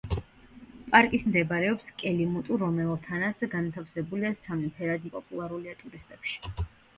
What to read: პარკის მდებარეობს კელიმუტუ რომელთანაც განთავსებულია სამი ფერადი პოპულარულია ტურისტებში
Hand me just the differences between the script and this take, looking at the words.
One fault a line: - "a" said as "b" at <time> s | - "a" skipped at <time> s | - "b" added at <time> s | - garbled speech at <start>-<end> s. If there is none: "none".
none